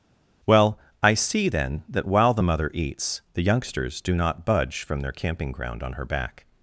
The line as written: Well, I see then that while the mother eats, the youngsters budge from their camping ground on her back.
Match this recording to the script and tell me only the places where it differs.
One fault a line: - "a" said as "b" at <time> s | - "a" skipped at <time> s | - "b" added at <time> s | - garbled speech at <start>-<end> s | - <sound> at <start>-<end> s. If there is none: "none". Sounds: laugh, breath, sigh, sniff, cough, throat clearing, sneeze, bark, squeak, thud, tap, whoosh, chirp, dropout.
- "do not" added at 4.0 s